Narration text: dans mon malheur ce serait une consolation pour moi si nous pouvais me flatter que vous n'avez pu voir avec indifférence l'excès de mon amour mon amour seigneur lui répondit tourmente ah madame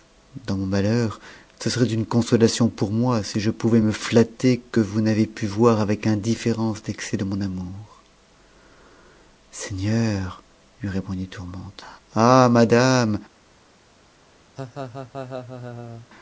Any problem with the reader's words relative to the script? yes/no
yes